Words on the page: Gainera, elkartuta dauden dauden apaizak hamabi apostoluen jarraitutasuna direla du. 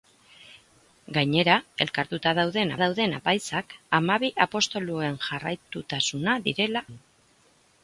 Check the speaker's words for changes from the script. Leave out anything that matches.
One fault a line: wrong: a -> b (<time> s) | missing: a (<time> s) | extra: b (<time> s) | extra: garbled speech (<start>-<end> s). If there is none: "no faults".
no faults